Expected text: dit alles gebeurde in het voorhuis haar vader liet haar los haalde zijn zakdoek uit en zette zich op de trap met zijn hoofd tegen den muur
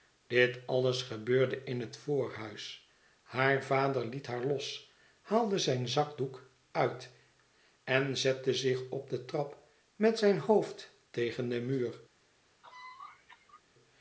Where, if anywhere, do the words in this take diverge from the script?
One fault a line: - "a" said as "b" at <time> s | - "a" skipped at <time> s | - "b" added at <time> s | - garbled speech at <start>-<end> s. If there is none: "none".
none